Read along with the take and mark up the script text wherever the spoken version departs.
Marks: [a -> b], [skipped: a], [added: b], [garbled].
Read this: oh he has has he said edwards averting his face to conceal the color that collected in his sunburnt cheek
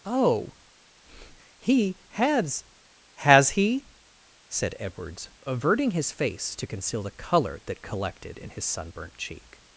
oh he has has he said edwards averting his face to conceal the color that collected in his sunburnt cheek